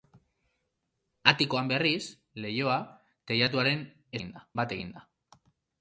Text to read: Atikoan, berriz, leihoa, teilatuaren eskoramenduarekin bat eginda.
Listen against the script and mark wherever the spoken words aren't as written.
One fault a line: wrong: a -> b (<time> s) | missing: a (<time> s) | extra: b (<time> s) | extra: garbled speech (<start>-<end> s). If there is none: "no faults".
wrong: eskoramenduarekin -> eginda (4.2 s)